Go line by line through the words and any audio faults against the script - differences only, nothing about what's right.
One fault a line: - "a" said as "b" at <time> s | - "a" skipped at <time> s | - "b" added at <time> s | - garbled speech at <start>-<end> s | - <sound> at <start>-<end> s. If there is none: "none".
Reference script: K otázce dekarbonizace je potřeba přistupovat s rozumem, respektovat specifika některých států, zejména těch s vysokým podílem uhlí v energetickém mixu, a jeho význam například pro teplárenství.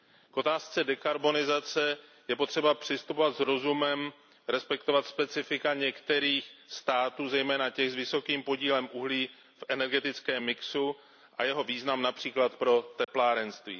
- dropout at 13.0-13.1 s